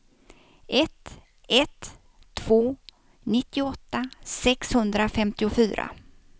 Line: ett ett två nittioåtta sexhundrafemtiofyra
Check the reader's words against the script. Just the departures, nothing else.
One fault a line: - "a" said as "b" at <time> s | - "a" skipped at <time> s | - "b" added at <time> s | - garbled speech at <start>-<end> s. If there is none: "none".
none